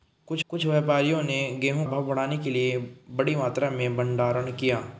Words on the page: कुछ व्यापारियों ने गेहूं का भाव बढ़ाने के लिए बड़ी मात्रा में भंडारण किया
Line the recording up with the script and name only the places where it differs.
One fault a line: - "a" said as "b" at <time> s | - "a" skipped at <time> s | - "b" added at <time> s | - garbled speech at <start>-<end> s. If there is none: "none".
- "कुछ" added at 0.5 s
- "का" skipped at 1.9 s